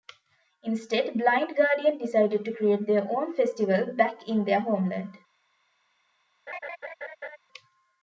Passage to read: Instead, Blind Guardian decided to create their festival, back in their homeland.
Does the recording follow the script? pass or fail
fail